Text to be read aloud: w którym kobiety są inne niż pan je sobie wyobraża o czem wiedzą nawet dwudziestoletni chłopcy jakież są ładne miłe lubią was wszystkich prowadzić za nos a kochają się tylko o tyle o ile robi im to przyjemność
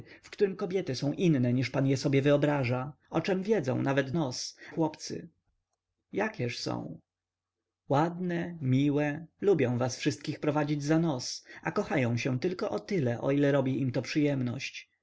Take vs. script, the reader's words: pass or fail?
fail